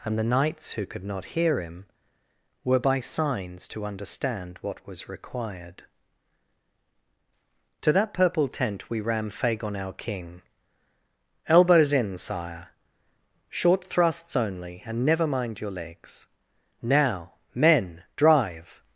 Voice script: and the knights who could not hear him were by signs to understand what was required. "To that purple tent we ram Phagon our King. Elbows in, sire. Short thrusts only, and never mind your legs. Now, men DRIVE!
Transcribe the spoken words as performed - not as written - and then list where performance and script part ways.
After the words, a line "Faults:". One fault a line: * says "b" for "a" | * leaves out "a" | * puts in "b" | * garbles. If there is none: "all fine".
and the knights who could not hear him were by signs to understand what was required. "To that purple tent we ram Phagon our King. Elbows in, sire. Short thrusts only, and never mind your legs. Now, men DRIVE!
Faults:
all fine